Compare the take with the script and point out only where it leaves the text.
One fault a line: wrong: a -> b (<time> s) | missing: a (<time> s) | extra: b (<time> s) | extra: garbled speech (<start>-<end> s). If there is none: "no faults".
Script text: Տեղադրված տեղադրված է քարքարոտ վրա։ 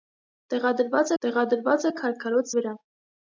no faults